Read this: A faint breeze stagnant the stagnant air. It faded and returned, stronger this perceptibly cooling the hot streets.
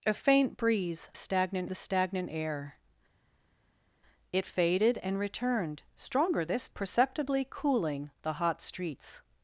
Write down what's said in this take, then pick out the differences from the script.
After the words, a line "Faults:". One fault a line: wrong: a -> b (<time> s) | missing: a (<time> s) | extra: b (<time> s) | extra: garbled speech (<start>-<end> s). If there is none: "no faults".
A faint breeze stagnant the stagnant air. It faded and returned, stronger this perceptibly cooling the hot streets.
Faults:
no faults